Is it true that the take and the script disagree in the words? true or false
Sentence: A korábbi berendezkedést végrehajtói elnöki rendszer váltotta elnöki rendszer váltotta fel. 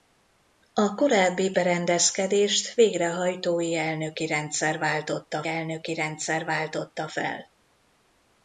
false